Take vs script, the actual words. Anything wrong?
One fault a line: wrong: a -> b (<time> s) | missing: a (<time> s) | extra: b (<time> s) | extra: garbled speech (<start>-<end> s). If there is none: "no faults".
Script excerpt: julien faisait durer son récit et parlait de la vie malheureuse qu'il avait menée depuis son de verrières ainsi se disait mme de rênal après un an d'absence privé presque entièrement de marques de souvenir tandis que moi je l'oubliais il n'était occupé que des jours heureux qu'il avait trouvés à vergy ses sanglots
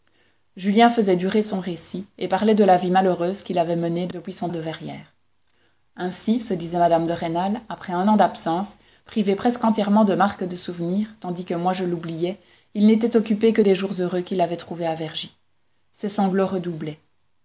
no faults